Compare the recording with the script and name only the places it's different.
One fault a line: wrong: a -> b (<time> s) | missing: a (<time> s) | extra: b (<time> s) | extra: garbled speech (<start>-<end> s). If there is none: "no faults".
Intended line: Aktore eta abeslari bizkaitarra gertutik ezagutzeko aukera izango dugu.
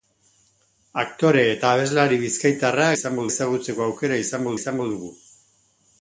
wrong: gertutik -> izango (3.0 s)
extra: izango (4.6 s)